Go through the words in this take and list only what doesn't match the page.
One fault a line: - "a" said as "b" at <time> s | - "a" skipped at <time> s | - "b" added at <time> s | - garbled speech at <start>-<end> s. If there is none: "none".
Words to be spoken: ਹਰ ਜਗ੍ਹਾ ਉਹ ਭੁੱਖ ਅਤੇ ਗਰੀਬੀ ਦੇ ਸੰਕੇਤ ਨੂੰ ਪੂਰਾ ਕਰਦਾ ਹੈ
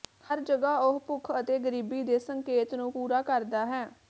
none